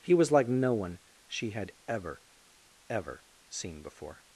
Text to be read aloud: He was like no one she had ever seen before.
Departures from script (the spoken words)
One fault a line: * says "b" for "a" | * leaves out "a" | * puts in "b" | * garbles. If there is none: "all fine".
* puts in "ever"